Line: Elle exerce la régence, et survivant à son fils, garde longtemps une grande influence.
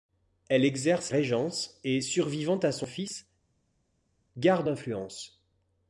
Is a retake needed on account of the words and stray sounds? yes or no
yes